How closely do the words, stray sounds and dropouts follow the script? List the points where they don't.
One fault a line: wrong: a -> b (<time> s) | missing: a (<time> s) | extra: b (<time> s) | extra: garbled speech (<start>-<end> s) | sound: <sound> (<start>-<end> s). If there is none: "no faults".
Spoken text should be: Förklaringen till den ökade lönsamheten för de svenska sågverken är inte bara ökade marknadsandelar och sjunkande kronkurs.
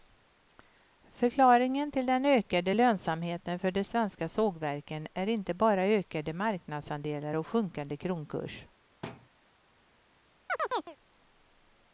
sound: thud (9.0-9.3 s)
sound: chirp (10.5-11.0 s)